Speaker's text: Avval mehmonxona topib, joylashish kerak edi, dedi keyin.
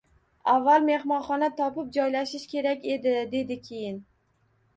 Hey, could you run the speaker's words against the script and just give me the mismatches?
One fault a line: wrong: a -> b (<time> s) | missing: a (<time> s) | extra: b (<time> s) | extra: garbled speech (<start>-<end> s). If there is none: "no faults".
no faults